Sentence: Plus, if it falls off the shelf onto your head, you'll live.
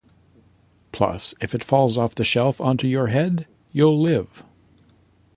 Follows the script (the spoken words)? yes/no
yes